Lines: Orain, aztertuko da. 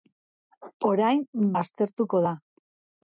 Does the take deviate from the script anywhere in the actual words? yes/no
no